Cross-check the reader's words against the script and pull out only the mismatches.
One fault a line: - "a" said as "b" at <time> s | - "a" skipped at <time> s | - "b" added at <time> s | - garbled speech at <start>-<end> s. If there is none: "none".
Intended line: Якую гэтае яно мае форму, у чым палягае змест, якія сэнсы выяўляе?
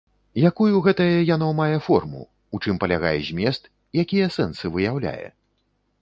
none